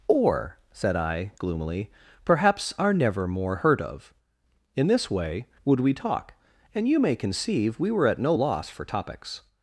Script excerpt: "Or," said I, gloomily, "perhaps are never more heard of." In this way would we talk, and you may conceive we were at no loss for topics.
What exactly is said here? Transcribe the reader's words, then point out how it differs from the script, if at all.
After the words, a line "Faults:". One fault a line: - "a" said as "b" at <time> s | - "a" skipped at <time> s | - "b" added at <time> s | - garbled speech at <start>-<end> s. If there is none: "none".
"Or," said I, gloomily, "perhaps are never more heard of." In this way would we talk, and you may conceive we were at no loss for topics.
Faults:
none